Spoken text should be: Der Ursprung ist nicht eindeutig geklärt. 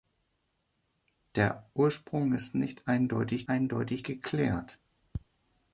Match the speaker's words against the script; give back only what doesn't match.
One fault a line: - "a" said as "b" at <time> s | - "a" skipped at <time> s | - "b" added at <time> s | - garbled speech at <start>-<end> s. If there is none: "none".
- "eindeutig" added at 3.5 s